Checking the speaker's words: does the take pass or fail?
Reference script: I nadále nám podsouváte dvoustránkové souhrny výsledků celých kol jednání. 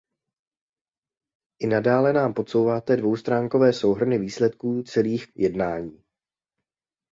fail